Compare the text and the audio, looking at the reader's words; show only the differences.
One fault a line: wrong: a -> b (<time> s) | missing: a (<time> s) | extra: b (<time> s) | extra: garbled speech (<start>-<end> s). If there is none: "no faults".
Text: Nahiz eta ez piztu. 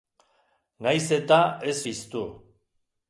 no faults